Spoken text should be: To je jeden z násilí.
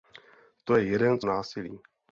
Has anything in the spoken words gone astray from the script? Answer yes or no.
no